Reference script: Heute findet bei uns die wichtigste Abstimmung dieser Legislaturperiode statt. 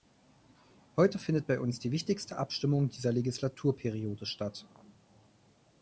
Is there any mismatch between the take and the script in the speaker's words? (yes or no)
no